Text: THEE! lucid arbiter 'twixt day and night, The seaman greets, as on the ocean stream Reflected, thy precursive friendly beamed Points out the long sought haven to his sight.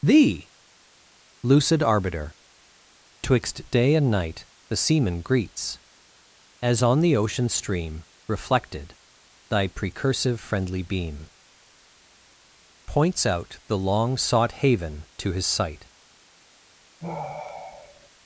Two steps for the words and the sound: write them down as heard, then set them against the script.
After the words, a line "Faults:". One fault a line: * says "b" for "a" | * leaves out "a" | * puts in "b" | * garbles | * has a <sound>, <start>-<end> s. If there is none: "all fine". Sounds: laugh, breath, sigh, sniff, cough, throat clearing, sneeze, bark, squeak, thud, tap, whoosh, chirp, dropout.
THEE! lucid arbiter 'twixt day and night, The seaman greets, as on the ocean stream Reflected, thy precursive friendly beam Points out the long sought haven to his sight.
Faults:
* says "beam" for "beamed"
* has a sigh, 17.0-18.1 s